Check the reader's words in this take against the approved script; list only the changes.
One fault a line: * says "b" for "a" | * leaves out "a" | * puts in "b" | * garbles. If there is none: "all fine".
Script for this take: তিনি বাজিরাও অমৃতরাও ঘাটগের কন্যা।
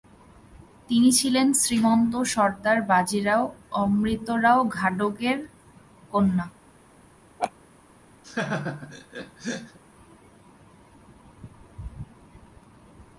* puts in "ছিলেন শ্রীমন্ত সর্দার"